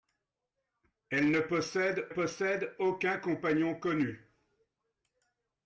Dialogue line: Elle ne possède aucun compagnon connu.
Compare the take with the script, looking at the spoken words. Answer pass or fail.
fail